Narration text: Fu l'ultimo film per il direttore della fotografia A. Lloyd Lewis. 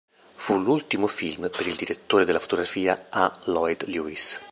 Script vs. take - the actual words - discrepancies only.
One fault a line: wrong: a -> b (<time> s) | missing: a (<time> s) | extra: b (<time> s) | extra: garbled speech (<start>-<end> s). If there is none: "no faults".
no faults